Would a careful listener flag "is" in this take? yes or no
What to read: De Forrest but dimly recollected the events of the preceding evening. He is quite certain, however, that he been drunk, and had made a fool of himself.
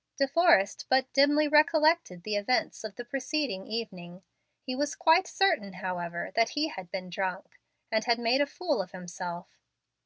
yes